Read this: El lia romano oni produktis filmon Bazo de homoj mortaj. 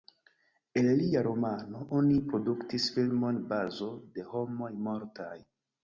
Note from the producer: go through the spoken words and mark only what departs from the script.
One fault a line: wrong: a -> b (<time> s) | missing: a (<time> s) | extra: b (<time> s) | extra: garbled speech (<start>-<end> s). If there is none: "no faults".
no faults